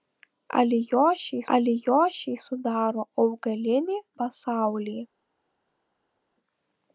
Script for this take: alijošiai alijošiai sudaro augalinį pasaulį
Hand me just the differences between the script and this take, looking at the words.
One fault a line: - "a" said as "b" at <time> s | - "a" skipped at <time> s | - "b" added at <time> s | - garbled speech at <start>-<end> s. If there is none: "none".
none